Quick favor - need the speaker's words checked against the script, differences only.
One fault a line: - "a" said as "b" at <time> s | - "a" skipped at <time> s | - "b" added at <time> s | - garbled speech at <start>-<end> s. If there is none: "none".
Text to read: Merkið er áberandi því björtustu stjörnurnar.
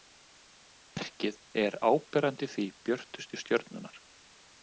none